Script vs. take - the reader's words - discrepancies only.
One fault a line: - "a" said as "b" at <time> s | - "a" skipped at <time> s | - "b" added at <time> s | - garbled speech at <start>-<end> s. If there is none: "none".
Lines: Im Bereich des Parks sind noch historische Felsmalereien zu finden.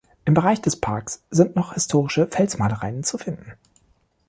none